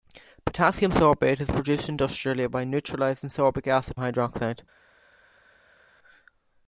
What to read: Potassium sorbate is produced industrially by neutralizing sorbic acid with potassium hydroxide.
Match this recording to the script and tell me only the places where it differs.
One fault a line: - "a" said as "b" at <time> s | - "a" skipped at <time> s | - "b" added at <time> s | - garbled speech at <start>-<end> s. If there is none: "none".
- "with potassium" skipped at 4.0 s